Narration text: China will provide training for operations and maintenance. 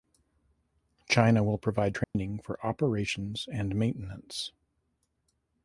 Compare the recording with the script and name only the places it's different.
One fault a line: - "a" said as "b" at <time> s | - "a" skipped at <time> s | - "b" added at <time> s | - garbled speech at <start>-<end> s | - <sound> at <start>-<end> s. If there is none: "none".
- dropout at 2.0-2.1 s